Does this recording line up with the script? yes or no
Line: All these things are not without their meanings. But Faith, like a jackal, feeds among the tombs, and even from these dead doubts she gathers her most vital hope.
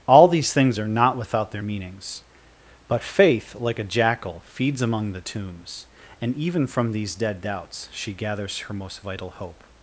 yes